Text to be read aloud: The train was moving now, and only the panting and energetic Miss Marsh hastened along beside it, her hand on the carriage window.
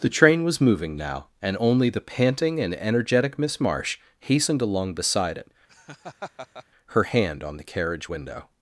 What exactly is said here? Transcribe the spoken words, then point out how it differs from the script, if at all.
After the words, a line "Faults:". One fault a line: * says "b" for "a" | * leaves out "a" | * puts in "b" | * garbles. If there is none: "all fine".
The train was moving now, and only the panting and energetic Miss Marsh hastened along beside it, her hand on the carriage window.
Faults:
all fine